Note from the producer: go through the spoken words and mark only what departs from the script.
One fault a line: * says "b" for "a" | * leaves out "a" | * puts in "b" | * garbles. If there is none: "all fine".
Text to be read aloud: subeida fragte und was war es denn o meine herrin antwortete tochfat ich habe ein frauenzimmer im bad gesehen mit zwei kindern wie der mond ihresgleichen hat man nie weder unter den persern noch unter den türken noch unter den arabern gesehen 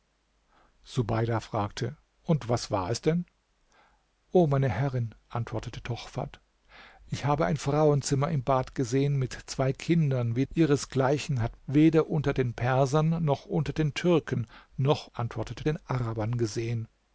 * leaves out "der mond"
* leaves out "man nie"
* says "antwortete" for "unter"